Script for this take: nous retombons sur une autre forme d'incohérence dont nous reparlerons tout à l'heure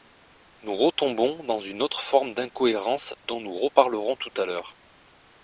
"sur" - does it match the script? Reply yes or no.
no